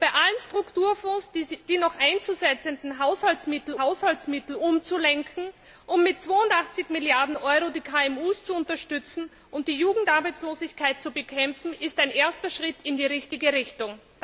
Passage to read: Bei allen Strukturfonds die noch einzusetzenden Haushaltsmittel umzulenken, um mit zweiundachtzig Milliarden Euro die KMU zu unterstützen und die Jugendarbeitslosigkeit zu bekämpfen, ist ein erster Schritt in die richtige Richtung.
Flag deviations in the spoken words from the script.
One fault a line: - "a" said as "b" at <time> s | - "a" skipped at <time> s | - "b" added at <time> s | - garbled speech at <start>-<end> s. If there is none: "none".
- "Haushaltsmittel" added at 3.8 s